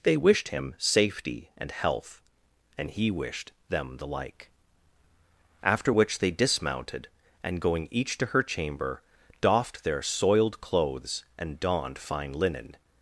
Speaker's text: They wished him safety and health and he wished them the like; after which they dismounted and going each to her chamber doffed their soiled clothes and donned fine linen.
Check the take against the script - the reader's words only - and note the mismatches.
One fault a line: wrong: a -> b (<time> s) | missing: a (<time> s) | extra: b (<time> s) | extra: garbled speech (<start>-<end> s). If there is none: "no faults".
no faults